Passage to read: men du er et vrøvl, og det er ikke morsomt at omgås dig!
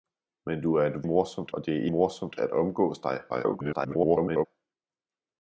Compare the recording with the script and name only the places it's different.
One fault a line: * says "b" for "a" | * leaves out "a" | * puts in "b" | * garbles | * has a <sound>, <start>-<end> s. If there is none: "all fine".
* says "morsomt" for "vrøvl"
* leaves out "ikke"
* garbles